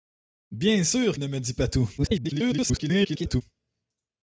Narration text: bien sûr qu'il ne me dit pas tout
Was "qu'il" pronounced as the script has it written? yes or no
no